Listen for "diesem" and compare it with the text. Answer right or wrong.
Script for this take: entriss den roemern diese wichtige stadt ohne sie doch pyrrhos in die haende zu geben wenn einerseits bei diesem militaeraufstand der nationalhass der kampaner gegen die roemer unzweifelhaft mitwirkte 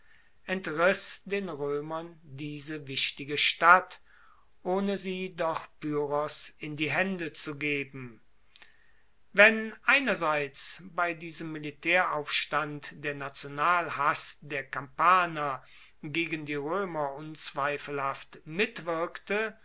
right